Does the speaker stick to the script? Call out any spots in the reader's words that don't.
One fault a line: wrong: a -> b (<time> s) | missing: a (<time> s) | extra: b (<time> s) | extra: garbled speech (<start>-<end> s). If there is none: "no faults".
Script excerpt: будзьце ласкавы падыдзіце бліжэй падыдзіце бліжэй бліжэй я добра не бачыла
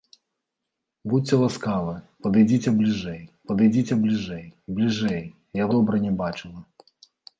no faults